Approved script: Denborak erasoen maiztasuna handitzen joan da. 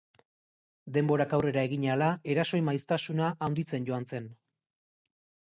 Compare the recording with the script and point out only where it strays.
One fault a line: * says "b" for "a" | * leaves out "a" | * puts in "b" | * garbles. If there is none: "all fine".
* puts in "aurrera egin ahala"
* says "zen" for "da"